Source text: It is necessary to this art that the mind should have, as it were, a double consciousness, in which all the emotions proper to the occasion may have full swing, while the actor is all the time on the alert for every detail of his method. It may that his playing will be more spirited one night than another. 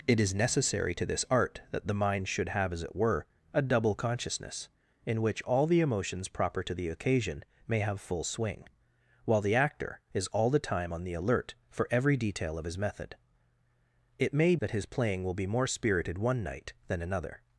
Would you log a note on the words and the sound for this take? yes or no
no